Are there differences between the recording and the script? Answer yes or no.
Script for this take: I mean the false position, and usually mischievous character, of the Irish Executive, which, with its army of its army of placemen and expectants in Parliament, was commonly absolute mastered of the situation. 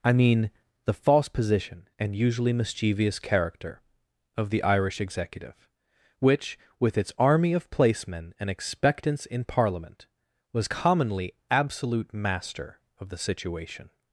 yes